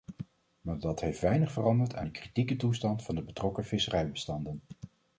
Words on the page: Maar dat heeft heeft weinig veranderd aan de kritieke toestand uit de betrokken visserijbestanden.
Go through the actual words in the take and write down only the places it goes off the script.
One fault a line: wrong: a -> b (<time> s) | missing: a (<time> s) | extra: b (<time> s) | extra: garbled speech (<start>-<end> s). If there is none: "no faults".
missing: heeft (1.2 s)
wrong: uit -> van (3.0 s)